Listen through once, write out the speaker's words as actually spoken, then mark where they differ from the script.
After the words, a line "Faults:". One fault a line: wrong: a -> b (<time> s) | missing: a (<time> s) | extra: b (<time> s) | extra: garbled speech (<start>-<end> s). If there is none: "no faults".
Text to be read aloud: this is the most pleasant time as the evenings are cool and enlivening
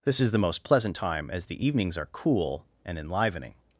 this is the most pleasant time as the evenings are cool and enlivening
Faults:
no faults